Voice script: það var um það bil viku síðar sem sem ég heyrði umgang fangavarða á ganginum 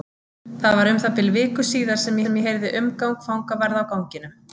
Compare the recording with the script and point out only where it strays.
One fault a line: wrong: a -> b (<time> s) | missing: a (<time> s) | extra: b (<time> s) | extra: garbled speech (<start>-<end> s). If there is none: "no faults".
no faults